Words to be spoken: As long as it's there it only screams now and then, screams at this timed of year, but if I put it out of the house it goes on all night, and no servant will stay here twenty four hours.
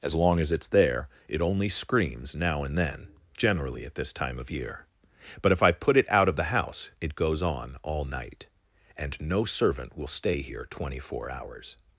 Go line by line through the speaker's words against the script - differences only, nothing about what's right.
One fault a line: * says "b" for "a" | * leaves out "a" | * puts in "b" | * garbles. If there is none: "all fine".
* says "generally" for "screams"
* says "time" for "timed"